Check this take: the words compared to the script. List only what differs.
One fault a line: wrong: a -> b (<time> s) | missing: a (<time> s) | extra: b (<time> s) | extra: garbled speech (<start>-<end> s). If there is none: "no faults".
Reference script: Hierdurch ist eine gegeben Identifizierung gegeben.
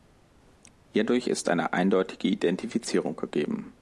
wrong: gegeben -> eindeutige (1.7 s)